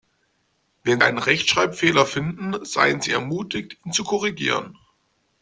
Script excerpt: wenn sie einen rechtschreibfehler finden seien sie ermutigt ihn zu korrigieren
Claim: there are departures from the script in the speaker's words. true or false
true